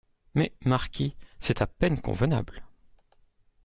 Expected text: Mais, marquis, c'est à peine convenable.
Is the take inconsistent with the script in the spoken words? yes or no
no